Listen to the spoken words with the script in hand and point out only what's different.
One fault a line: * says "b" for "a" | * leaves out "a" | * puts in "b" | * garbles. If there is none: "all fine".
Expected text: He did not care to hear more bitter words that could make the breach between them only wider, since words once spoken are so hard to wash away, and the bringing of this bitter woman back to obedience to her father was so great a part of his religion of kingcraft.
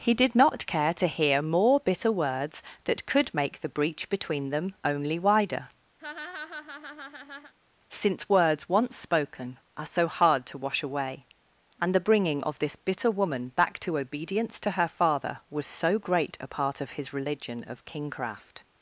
all fine